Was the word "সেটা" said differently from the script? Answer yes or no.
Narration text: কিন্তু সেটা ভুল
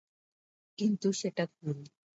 no